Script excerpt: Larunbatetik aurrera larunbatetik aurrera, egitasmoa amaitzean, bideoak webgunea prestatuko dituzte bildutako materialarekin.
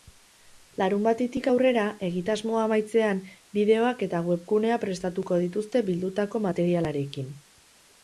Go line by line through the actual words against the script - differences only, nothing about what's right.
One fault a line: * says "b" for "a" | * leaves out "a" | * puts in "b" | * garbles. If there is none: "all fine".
* leaves out "larunbatetik aurrera"
* puts in "eta"